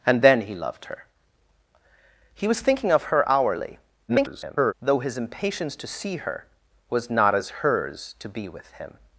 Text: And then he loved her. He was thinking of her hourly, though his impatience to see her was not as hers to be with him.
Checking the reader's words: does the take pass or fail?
fail